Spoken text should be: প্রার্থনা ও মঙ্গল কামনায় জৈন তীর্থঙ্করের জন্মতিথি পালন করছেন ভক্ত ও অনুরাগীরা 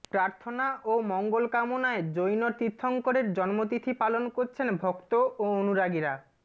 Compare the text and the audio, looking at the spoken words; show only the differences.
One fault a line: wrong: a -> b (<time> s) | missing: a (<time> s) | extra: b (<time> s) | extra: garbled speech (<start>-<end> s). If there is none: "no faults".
no faults